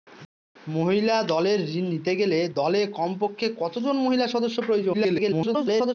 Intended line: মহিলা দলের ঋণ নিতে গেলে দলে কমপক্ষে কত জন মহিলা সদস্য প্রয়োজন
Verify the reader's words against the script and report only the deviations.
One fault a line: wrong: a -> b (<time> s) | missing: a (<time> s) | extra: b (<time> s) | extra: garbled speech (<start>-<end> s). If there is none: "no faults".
extra: garbled speech (4.9-5.9 s)